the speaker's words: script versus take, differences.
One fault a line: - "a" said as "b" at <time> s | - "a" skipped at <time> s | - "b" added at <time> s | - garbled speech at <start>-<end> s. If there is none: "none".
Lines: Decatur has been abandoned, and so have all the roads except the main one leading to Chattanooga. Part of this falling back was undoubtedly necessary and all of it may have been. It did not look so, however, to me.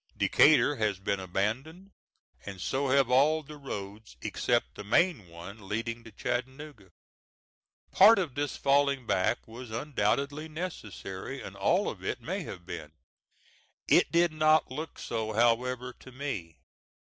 none